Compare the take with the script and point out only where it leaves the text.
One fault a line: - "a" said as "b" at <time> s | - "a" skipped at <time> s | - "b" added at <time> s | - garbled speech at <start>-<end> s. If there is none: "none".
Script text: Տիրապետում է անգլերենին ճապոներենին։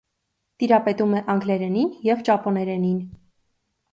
- "և" added at 2.1 s